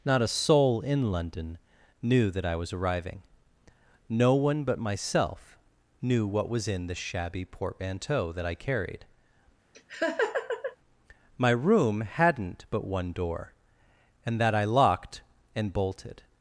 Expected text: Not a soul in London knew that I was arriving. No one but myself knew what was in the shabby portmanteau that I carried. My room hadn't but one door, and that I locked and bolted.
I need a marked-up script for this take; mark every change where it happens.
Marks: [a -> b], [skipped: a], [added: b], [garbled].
Not a soul in London knew that I was arriving. No one but myself knew what was in the shabby portmanteau that I carried. My room hadn't but one door, and that I locked and bolted.